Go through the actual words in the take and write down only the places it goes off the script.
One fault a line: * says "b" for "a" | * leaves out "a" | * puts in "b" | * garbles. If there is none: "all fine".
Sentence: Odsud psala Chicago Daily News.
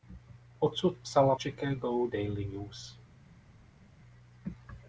all fine